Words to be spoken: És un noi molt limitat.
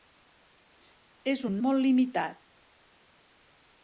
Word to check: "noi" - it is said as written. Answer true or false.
false